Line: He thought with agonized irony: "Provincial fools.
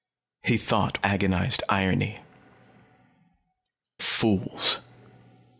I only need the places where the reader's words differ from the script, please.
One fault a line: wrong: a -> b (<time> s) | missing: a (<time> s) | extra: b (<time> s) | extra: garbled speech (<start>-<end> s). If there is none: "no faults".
missing: with (1.1 s)
missing: Provincial (2.2 s)